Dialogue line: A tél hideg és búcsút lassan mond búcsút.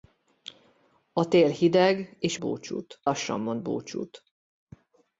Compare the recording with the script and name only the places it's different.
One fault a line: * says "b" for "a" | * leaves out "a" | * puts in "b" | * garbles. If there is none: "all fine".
all fine